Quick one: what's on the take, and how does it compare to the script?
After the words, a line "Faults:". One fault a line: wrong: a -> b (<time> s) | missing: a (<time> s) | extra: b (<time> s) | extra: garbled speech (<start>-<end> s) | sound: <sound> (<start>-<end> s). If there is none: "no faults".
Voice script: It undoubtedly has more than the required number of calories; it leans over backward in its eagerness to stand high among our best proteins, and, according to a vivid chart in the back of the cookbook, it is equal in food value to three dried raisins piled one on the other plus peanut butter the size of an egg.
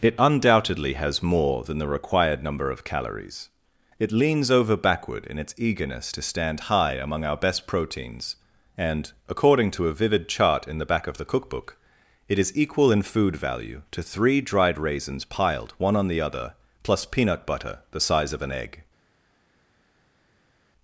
It undoubtedly has more than the required number of calories; it leans over backward in its eagerness to stand high among our best proteins, and, according to a vivid chart in the back of the cookbook, it is equal in food value to three dried raisins piled one on the other plus peanut butter the size of an egg.
Faults:
no faults